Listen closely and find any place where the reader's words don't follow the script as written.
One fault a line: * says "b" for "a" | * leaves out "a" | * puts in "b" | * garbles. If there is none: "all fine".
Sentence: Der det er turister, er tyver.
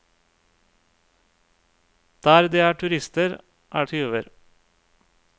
all fine